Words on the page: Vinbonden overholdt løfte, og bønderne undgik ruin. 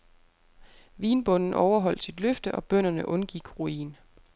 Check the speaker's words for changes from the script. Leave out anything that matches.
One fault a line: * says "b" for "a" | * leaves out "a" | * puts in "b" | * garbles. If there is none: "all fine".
* puts in "sit"